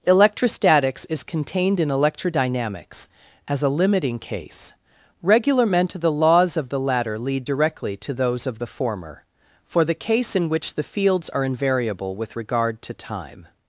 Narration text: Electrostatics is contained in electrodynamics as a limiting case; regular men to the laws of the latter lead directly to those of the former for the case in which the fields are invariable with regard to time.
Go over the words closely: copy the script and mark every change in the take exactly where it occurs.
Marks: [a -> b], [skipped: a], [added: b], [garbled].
Electrostatics is contained in electrodynamics as a limiting case; regular men to the laws of the latter lead directly to those of the former for the case in which the fields are invariable with regard to time.